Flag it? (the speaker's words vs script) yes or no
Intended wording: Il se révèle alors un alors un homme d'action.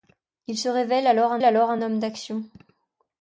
no